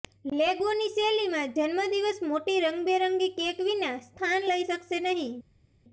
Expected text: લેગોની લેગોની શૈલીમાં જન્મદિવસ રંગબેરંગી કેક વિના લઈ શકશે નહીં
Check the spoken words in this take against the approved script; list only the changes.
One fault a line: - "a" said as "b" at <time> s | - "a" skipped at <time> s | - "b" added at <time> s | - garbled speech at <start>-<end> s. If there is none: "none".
- "લેગોની" skipped at 0.9 s
- "મોટી" added at 2.3 s
- "સ્થાન" added at 4.0 s